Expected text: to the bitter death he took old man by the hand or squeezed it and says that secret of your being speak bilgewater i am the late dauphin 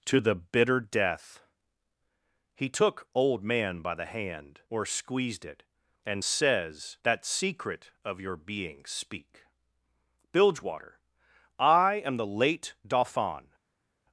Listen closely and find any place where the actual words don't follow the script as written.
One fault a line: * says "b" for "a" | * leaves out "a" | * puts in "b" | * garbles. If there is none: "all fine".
all fine